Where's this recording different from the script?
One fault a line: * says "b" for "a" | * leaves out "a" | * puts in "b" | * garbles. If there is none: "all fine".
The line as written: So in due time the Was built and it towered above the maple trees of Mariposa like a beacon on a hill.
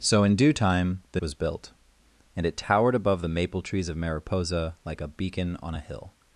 all fine